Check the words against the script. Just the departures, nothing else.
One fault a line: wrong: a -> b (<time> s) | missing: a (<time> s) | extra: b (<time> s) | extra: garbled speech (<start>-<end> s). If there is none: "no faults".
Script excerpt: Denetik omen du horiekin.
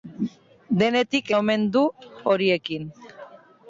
no faults